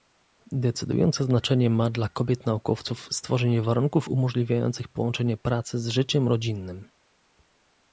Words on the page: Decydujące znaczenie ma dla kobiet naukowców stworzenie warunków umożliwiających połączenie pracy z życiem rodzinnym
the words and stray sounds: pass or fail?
pass